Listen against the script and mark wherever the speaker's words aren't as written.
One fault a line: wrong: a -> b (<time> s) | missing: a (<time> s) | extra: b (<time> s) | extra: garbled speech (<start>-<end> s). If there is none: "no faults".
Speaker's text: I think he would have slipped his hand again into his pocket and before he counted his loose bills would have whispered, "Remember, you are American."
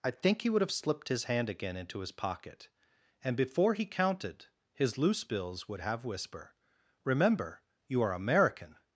wrong: whispered -> whisper (6.0 s)